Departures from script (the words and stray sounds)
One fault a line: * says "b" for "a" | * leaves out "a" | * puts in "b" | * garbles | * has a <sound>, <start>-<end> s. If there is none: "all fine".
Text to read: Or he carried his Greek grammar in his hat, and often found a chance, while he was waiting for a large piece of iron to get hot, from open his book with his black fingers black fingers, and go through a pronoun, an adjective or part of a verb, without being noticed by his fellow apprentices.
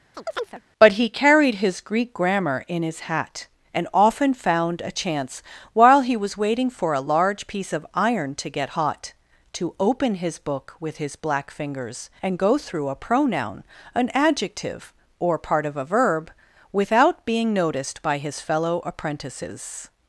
* has a chirp, 0.1-0.6 s
* says "But" for "Or"
* says "to" for "from"
* leaves out "black fingers"